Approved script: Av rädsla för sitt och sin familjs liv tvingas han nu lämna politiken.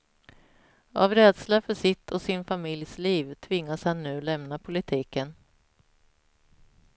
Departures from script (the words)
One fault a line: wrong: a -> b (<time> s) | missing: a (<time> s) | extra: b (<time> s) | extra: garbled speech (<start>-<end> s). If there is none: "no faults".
no faults